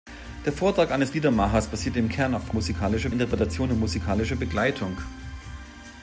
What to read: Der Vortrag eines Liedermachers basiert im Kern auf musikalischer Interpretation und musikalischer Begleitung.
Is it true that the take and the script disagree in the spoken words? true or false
false